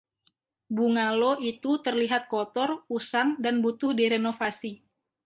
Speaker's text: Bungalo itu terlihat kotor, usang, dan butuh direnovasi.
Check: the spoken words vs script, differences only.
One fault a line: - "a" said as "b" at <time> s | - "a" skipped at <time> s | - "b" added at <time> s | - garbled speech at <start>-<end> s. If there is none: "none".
none